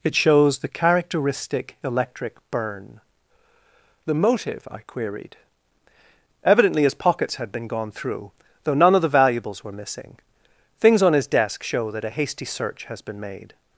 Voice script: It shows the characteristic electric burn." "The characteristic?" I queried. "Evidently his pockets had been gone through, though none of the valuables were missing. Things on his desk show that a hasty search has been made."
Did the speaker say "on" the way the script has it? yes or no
yes